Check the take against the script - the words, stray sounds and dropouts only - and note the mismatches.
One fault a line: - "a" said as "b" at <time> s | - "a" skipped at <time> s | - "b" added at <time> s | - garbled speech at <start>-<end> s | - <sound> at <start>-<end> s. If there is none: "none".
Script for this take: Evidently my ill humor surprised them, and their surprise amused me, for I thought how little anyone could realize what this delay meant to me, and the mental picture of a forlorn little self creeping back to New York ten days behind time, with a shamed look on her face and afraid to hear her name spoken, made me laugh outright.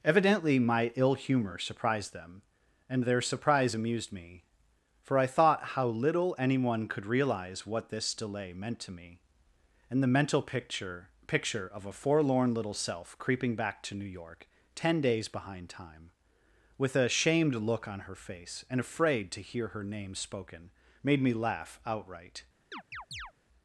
- "picture" added at 11.2 s
- chirp at 22.7-23.3 s